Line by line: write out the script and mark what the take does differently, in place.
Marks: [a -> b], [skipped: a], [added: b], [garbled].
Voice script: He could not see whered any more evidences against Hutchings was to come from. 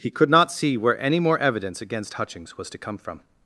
He could not see [whered -> where] any more [evidences -> evidence] against Hutchings was to come from.